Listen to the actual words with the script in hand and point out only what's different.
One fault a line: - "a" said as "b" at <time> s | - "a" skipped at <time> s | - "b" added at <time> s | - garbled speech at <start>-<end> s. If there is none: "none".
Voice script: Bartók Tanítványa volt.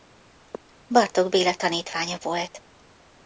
- "Béla" added at 1.3 s